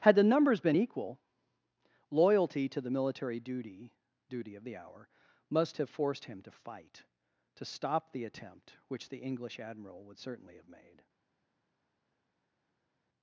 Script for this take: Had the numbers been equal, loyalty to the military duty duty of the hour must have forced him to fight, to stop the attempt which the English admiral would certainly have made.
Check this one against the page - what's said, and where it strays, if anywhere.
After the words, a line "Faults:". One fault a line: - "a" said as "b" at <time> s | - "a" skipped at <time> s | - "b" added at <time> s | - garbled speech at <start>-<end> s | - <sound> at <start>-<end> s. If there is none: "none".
Had the numbers been equal, loyalty to the military duty duty of the hour must have forced him to fight, to stop the attempt which the English admiral would certainly have made.
Faults:
none